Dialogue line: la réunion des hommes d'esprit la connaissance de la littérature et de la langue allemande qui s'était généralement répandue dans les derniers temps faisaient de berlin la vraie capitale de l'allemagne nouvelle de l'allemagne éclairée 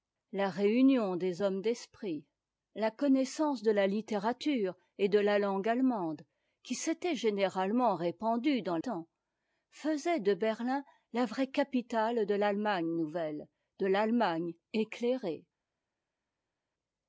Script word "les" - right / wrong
wrong